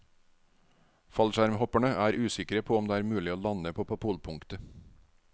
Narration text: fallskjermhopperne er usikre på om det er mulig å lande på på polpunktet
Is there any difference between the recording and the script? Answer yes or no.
no